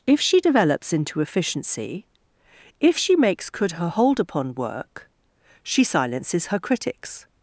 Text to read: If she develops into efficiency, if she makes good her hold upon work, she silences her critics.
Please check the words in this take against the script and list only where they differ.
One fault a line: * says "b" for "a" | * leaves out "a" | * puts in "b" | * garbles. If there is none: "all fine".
* says "could" for "good"